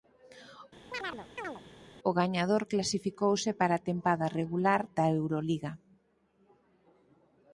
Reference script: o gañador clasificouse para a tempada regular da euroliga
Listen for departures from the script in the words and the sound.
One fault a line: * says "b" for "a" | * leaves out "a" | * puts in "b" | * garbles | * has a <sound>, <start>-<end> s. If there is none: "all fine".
* has a chirp, 0.9-1.6 s